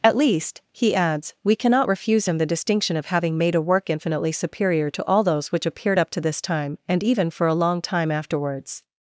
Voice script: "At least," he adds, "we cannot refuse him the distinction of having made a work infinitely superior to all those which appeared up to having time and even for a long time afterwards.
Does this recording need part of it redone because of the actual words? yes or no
yes